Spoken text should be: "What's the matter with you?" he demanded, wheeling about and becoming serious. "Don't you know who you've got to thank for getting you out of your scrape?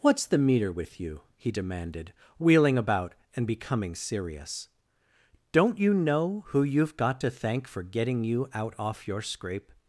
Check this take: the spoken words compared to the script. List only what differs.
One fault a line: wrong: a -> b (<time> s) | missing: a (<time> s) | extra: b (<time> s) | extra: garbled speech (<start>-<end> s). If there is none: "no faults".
wrong: matter -> meter (0.4 s)
wrong: of -> off (8.8 s)